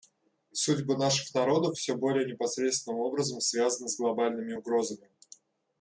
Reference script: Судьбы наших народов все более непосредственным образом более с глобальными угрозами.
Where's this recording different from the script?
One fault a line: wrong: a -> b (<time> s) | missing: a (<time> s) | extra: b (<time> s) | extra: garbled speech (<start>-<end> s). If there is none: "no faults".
wrong: более -> связаны (3.4 s)